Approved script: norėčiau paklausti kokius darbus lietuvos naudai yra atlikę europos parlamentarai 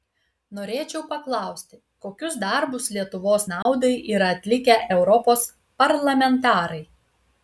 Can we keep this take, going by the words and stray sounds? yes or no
no